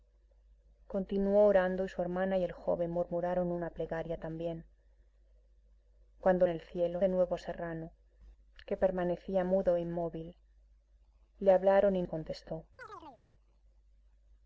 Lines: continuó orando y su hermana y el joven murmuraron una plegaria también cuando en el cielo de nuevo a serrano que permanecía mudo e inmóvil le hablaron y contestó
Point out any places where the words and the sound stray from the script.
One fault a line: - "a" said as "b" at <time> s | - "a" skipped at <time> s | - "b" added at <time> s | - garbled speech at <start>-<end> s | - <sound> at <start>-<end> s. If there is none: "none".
- chirp at 12.8-13.2 s